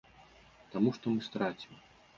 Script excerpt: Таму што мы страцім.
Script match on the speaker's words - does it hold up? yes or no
yes